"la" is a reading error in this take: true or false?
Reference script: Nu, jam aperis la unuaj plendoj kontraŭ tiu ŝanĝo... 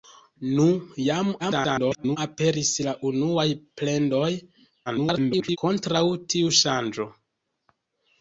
false